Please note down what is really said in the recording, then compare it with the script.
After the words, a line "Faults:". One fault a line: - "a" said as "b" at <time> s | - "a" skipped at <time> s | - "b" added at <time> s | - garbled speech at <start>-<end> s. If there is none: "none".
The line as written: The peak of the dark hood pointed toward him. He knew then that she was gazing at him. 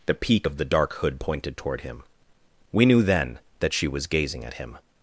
The peak of the dark hood pointed toward him. We knew then that she was gazing at him.
Faults:
- "He" said as "We" at 2.7 s